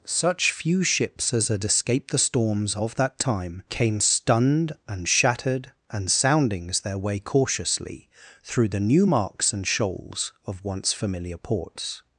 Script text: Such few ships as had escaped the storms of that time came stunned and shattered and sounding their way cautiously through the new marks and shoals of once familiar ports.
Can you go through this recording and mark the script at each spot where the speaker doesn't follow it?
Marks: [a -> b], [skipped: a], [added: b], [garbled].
Such few ships as had escaped the storms of that time came stunned and shattered and [sounding -> soundings] their way cautiously through the new marks and shoals of once familiar ports.